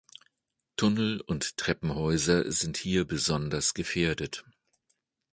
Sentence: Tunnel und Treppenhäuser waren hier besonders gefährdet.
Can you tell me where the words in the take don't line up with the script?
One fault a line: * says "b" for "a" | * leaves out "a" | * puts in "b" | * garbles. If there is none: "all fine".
* says "sind" for "waren"